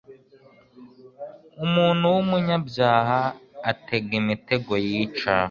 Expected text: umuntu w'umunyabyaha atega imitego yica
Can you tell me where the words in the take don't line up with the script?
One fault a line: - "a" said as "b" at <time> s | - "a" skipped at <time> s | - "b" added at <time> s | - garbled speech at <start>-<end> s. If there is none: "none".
none